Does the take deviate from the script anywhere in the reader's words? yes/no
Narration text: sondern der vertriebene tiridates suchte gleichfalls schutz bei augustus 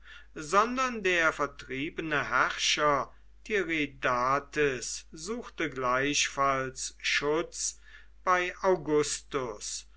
yes